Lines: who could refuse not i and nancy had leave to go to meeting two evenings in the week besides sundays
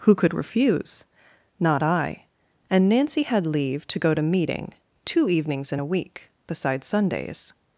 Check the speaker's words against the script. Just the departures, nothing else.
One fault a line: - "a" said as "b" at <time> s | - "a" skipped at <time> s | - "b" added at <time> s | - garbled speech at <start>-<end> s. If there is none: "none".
- "the" said as "a" at 5.8 s